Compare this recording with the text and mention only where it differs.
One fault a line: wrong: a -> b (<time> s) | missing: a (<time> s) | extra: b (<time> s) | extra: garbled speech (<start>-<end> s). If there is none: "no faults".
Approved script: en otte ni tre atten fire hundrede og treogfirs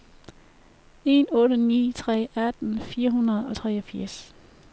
no faults